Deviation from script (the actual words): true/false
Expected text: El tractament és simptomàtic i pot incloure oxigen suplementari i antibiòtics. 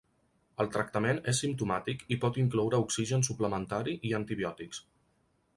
false